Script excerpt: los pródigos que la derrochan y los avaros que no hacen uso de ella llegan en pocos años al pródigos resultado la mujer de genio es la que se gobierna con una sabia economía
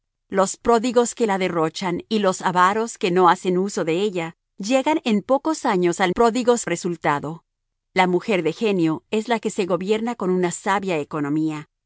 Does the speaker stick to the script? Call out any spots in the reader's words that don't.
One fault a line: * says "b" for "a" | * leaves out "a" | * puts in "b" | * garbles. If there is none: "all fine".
all fine